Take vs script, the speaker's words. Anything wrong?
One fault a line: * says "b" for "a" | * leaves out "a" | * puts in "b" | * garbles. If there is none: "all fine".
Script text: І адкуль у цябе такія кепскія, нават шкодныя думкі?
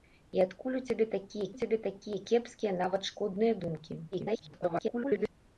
* puts in "цябе такія"
* garbles